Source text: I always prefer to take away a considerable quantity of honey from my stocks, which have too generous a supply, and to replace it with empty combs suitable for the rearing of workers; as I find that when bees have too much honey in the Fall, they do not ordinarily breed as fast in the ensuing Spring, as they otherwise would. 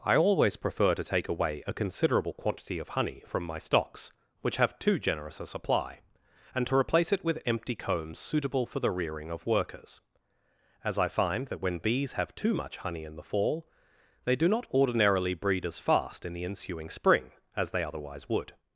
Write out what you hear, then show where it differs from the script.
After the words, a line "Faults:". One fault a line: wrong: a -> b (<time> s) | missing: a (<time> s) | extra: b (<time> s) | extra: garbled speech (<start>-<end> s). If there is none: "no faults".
I always prefer to take away a considerable quantity of honey from my stocks, which have too generous a supply, and to replace it with empty combs suitable for the rearing of workers; as I find that when bees have too much honey in the Fall, they do not ordinarily breed as fast in the ensuing Spring, as they otherwise would.
Faults:
no faults